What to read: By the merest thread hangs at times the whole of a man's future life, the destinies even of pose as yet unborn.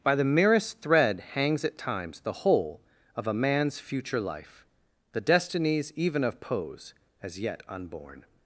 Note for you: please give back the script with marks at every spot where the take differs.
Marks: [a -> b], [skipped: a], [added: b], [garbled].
By the merest thread hangs at times the whole of a man's future life, the destinies even of pose as yet unborn.